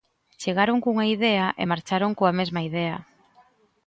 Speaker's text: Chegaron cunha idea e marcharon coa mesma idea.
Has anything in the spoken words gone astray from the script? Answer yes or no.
no